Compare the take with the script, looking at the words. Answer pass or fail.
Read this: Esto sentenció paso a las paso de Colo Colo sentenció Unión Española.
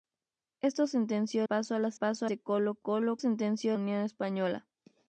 pass